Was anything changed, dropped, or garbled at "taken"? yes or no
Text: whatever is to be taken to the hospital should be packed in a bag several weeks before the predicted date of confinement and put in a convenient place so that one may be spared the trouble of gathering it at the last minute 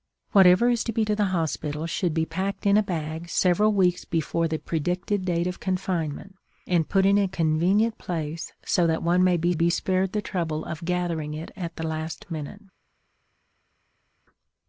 yes